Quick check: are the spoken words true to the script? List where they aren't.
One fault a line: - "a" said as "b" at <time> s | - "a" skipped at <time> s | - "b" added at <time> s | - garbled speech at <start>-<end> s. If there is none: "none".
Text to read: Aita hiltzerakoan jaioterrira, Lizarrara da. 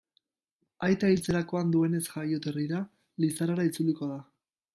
- "duenez" added at 1.7 s
- "itzuliko" added at 3.7 s